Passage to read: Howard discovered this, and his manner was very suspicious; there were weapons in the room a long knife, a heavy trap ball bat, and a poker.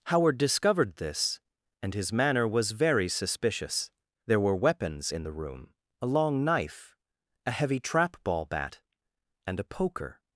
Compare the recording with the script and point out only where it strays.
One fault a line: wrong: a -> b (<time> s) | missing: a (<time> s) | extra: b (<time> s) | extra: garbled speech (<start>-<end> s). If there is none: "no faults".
no faults